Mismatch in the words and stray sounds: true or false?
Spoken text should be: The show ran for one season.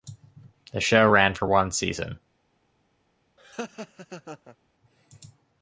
true